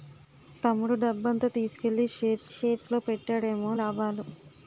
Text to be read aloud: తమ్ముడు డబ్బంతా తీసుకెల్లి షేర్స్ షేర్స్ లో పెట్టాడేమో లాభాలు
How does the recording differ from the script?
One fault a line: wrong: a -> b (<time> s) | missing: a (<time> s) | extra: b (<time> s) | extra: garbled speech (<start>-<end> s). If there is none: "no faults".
no faults